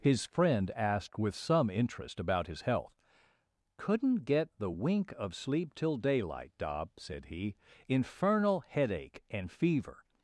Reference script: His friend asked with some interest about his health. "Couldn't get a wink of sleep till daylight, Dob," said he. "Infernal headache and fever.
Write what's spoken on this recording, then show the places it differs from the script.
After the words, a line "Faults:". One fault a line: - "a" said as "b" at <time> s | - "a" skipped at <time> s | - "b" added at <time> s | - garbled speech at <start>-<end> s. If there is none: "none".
His friend asked with some interest about his health. "Couldn't get the wink of sleep till daylight, Dob," said he. "Infernal headache and fever.
Faults:
- "a" said as "the" at 4.6 s